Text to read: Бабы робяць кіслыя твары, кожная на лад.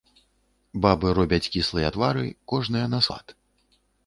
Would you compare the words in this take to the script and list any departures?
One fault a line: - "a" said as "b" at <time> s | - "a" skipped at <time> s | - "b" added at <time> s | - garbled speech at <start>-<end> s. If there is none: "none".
none